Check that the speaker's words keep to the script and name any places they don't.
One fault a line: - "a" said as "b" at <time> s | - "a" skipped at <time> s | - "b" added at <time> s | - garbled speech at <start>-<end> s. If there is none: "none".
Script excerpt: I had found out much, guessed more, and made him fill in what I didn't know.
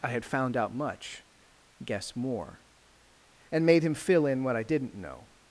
- "guessed" said as "guess" at 1.8 s